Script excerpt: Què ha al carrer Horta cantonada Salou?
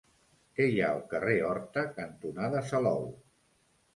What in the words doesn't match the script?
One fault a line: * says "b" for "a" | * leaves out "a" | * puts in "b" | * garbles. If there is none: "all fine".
* puts in "hi"